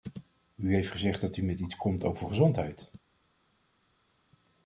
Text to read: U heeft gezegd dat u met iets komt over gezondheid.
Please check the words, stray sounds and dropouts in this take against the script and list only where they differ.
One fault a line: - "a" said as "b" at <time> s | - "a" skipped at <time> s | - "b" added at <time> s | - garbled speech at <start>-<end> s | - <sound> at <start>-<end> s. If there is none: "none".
none